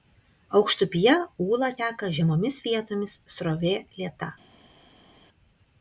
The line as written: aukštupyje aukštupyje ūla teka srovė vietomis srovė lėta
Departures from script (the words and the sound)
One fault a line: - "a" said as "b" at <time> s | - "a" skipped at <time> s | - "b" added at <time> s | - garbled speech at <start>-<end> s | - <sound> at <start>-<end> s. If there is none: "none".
- "aukštupyje" skipped at 1.1 s
- "srovė" said as "žemomis" at 2.2 s